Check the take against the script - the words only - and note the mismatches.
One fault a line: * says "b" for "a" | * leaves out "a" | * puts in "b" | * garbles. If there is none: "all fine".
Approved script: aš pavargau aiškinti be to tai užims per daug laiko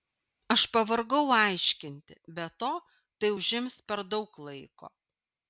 all fine